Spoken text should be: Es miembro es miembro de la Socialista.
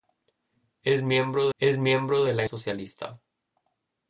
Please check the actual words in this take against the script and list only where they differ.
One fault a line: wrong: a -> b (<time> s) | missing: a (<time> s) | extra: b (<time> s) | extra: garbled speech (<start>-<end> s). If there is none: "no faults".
no faults